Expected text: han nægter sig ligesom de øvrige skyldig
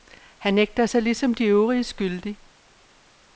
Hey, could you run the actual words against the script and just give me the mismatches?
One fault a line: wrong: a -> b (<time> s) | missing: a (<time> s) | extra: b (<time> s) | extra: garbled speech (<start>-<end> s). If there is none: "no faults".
no faults